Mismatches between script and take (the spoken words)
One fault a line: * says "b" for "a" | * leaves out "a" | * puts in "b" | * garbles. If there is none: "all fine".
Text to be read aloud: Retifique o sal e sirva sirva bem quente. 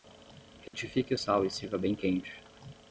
* leaves out "sirva"